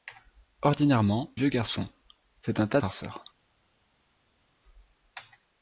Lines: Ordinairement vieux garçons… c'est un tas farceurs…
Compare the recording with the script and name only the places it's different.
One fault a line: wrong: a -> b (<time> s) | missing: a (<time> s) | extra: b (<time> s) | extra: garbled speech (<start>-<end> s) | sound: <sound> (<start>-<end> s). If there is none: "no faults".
no faults